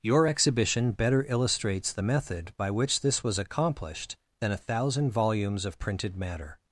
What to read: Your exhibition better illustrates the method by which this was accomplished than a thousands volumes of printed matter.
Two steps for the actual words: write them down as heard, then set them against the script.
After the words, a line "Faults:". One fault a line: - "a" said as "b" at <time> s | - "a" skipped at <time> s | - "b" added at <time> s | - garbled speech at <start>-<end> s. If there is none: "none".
Your exhibition better illustrates the method by which this was accomplished than a thousand volumes of printed matter.
Faults:
- "thousands" said as "thousand" at 4.6 s